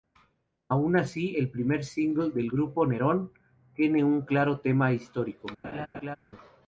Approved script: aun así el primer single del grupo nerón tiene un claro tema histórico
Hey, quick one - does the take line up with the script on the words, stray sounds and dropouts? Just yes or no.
no